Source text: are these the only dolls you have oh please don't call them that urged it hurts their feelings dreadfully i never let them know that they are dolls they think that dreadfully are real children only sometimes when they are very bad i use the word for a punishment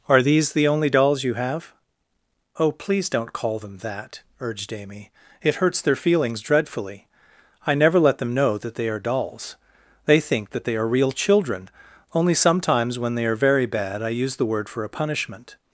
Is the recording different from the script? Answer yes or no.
yes